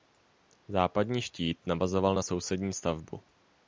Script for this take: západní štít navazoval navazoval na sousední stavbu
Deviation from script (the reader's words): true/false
true